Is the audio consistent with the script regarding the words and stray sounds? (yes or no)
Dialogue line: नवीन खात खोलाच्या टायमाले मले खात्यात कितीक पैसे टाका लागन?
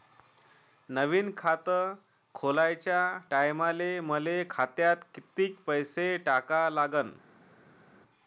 yes